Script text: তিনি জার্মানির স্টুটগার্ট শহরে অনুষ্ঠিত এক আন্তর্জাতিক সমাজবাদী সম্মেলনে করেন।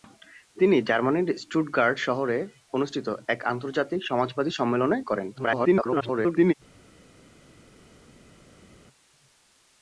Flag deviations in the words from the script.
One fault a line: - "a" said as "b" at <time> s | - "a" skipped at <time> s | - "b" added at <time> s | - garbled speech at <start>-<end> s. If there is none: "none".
- garbled speech at 5.4-6.5 s